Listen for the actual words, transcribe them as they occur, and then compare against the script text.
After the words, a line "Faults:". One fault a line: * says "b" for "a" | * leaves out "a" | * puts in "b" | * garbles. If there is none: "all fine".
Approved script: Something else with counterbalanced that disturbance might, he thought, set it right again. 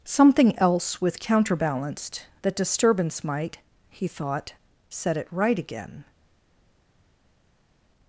Something else with counterbalanced that disturbance might, he thought, set it right again.
Faults:
all fine